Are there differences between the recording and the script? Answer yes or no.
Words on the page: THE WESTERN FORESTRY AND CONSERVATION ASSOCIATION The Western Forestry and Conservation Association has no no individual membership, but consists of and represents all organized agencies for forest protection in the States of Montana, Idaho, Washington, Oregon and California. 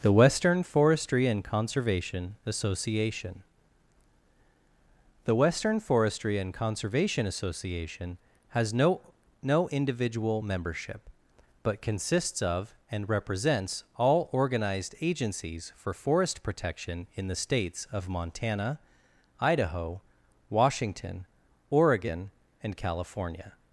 no